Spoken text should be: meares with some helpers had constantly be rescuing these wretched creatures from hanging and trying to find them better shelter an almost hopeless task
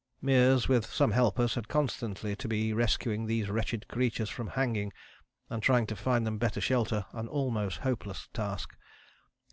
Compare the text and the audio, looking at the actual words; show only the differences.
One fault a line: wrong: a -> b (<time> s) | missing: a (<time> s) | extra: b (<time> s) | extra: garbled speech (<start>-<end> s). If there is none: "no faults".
extra: to (2.4 s)